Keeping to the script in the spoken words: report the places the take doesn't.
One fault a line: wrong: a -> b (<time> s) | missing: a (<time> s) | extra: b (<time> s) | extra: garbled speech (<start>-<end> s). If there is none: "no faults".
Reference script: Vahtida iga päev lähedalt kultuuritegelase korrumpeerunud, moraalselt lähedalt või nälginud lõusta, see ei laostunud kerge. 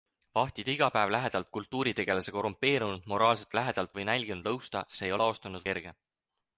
no faults